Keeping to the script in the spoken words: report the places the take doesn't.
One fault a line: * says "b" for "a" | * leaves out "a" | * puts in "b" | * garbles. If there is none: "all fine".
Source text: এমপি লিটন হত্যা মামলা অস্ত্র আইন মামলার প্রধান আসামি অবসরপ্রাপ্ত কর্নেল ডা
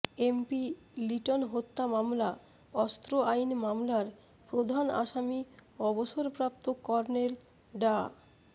all fine